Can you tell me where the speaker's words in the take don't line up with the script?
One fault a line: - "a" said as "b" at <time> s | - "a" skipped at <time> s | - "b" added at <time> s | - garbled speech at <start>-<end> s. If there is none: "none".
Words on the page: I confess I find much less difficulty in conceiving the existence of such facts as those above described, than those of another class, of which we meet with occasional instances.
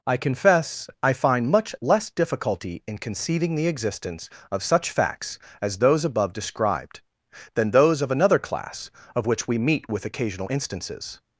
none